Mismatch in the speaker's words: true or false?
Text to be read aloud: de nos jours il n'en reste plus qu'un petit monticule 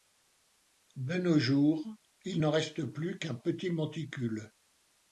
false